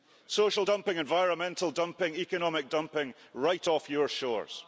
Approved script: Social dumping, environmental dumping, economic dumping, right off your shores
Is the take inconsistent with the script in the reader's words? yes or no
no